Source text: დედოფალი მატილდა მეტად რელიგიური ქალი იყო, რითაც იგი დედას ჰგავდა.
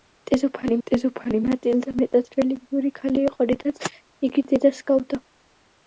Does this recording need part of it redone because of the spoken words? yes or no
yes